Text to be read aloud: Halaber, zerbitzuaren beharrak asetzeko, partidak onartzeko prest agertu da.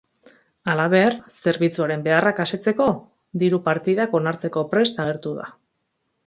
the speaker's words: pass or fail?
fail